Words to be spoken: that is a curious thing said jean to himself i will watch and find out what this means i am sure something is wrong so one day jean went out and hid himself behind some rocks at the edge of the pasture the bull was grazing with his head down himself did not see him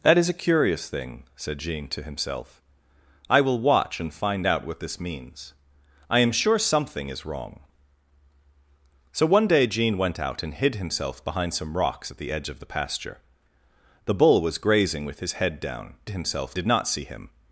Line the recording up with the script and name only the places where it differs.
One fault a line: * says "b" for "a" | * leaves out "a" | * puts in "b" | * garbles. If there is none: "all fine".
all fine